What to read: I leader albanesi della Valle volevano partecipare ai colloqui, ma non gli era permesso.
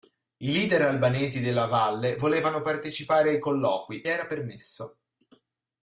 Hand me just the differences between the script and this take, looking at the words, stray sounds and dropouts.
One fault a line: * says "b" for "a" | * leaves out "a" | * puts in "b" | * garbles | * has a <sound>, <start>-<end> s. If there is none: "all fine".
* leaves out "ma non gli"